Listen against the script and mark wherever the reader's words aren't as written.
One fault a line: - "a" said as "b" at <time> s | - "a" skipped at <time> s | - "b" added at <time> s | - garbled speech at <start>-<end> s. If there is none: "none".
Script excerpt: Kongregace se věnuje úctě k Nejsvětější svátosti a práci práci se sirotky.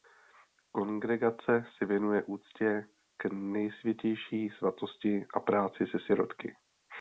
- "práci" skipped at 5.8 s